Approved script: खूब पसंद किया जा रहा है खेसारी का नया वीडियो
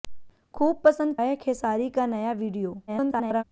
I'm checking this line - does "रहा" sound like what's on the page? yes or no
no